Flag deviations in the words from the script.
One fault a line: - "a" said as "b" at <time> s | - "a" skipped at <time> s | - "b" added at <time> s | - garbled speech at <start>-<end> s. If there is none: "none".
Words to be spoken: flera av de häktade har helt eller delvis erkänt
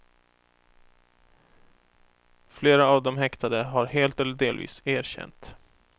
none